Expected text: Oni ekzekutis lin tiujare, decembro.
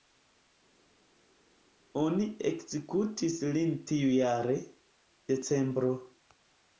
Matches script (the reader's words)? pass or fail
pass